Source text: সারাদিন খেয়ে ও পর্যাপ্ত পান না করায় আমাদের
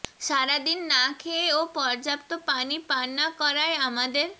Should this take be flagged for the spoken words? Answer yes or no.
yes